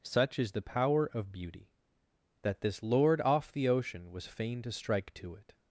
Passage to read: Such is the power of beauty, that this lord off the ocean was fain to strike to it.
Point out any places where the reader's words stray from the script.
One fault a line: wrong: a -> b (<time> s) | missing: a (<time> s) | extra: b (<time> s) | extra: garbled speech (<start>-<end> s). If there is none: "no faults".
no faults